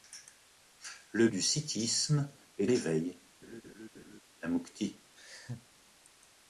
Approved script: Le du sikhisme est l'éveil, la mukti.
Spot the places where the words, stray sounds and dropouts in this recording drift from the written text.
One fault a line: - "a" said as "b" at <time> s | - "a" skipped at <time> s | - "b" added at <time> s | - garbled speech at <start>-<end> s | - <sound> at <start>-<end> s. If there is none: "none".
- laugh at 3.4-4.2 s
- laugh at 5.2-5.7 s